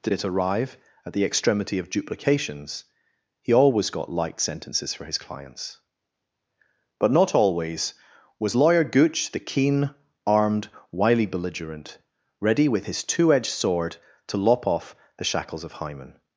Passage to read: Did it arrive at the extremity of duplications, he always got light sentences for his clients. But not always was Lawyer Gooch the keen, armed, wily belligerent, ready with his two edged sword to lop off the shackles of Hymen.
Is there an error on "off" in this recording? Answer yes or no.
no